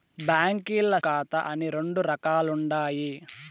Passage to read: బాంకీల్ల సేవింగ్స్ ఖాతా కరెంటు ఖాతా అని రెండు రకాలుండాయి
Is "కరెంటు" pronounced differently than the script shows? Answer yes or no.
yes